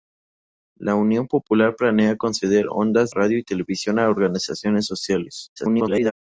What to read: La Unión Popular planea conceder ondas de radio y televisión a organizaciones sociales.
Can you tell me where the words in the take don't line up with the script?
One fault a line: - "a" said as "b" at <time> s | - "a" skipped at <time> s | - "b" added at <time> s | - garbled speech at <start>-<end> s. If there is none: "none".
- "de" skipped at 3.1 s
- garbled speech at 5.6-6.1 s